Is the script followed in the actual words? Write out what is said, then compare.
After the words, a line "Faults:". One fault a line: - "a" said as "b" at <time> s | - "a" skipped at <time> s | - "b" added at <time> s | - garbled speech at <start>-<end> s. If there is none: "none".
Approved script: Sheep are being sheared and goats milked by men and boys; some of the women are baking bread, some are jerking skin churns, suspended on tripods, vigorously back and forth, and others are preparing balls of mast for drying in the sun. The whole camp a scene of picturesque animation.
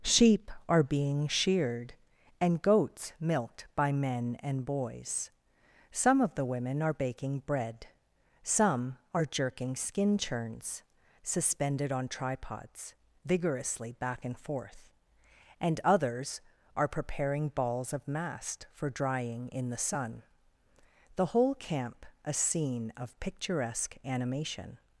Sheep are being sheared and goats milked by men and boys; some of the women are baking bread, some are jerking skin churns, suspended on tripods, vigorously back and forth, and others are preparing balls of mast for drying in the sun. The whole camp a scene of picturesque animation.
Faults:
none